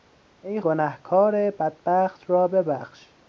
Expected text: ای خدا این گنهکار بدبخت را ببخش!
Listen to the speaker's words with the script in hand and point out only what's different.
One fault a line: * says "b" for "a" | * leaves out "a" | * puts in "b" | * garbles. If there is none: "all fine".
* leaves out "خدا این"